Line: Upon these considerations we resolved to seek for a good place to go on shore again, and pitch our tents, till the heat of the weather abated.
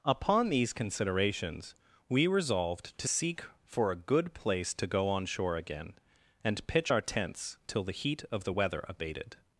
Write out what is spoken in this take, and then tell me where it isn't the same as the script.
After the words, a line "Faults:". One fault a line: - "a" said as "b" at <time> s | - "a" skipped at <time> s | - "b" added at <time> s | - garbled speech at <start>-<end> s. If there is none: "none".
Upon these considerations we resolved to seek for a good place to go on shore again, and pitch our tents, till the heat of the weather abated.
Faults:
none